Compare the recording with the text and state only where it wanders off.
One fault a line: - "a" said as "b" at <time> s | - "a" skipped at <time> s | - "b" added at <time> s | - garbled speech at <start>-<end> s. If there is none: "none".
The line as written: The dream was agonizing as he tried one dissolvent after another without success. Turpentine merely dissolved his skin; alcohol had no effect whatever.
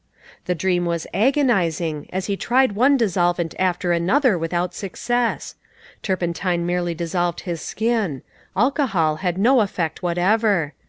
none